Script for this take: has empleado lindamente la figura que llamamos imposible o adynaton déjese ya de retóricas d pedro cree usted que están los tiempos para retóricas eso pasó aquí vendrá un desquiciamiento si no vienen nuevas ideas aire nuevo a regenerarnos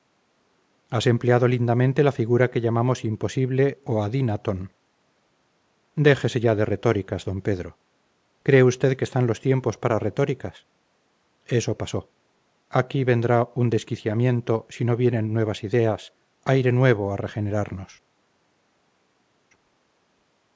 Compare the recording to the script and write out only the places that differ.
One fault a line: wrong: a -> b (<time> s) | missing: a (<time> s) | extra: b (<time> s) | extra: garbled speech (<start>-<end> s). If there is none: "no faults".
no faults